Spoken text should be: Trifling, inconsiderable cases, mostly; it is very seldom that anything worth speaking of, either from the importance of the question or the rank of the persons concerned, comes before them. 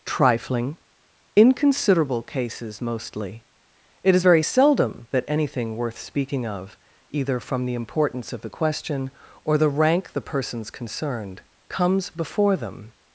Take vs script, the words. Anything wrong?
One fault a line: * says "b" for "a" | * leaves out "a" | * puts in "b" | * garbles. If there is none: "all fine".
* leaves out "of"